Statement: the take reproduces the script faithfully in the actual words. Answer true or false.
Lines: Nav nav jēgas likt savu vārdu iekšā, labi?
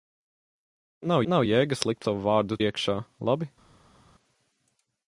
true